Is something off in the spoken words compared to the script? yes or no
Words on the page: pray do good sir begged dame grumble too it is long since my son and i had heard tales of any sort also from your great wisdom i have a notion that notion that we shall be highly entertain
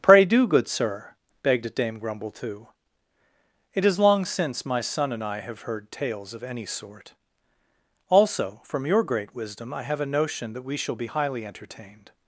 yes